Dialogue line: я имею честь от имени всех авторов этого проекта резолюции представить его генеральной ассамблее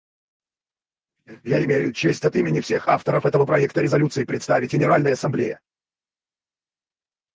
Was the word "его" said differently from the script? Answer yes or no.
yes